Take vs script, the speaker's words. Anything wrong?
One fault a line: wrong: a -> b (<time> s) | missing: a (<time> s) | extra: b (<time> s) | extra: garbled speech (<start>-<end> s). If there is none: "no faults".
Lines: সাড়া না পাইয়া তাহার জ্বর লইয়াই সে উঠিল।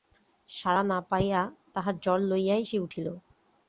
no faults